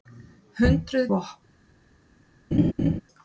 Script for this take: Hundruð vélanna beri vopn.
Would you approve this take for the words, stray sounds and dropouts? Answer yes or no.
no